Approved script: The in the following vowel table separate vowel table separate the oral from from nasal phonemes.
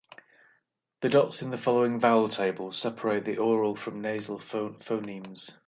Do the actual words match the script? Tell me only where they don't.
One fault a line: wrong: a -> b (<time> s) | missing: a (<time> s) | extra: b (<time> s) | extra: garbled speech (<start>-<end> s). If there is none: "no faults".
extra: dots (1.1 s)
missing: vowel table separate (3.2 s)
missing: from (4.0 s)